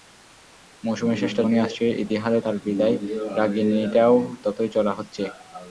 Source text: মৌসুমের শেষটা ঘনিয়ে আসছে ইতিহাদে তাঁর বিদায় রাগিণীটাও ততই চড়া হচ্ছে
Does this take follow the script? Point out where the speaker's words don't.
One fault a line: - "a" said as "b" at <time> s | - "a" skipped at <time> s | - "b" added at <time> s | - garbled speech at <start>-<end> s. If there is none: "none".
none